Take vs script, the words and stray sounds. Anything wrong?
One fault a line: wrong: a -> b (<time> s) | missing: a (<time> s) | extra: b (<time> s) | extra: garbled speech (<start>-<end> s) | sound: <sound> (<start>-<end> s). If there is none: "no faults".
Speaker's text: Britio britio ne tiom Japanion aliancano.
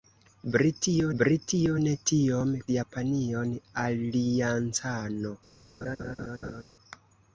sound: laugh (5.8-6.6 s)